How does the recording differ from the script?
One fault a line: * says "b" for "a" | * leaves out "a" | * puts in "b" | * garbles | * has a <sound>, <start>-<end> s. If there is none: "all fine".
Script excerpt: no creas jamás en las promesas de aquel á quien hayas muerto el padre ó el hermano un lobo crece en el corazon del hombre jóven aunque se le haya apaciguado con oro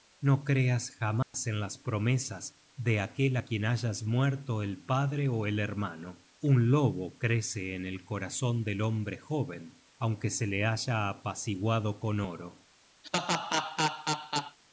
* has a dropout, 1.2-1.3 s
* has a laugh, 13.0-14.6 s